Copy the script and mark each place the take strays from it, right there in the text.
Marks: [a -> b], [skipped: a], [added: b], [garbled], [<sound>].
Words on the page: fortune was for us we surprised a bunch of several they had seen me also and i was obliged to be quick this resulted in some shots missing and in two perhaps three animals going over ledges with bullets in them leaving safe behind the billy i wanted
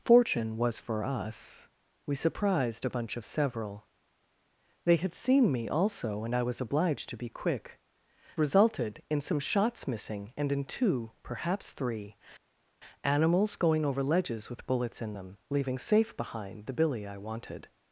fortune was for us we surprised a bunch of several they had seen me also and i was obliged to be quick [skipped: this] resulted in some shots missing and in two perhaps three animals going over ledges with bullets in them leaving safe behind the billy i wanted